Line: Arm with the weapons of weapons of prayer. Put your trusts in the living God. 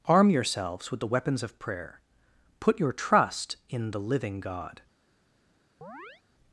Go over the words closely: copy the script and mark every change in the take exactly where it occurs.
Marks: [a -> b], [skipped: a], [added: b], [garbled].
Arm [added: yourselves] with the weapons of [skipped: weapons of] prayer. Put your [trusts -> trust] in the living God.